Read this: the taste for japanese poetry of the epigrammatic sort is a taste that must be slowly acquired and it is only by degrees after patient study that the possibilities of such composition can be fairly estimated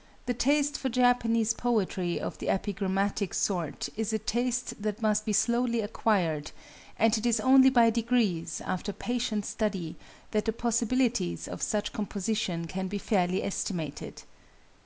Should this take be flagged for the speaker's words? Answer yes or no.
no